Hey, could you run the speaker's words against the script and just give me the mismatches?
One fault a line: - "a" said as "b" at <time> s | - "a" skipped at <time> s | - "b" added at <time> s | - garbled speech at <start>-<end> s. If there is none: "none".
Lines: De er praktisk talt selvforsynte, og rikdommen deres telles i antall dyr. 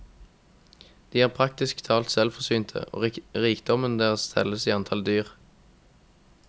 none